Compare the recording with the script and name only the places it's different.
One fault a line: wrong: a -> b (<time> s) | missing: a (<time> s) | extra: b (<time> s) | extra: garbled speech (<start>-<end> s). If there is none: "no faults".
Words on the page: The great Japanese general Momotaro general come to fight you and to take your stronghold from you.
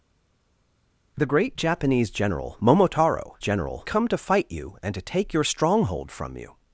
no faults